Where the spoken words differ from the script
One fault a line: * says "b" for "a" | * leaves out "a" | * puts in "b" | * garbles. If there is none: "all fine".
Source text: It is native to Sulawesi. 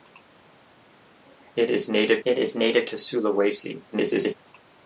* puts in "it is native"
* garbles